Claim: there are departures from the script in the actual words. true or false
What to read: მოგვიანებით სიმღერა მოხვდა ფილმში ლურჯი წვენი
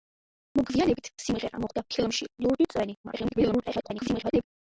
true